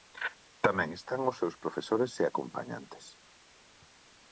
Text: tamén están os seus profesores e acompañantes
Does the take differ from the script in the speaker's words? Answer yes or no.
no